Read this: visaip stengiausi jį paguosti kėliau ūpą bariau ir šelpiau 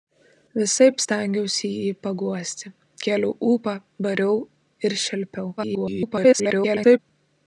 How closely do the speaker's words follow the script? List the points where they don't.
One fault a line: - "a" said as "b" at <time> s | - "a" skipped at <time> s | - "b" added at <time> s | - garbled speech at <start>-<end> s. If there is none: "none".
- garbled speech at 5.6-7.0 s